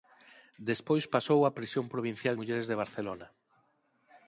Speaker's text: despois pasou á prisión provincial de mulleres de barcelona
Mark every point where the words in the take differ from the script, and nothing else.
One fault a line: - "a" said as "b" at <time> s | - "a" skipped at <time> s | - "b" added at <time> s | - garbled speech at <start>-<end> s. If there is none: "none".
- "de" skipped at 2.3 s